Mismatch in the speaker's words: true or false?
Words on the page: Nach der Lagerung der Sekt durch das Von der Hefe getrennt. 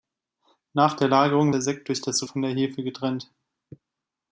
false